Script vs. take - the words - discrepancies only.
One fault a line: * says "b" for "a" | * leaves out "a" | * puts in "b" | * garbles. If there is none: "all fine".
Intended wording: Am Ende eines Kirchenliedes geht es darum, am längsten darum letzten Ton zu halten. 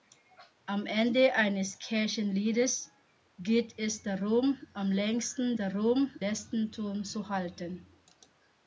all fine